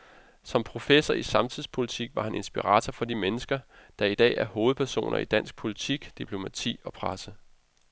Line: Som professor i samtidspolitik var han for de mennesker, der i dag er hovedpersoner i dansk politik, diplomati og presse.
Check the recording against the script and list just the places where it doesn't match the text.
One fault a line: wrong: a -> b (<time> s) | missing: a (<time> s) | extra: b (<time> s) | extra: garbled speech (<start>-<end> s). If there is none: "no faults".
extra: inspirator (2.3 s)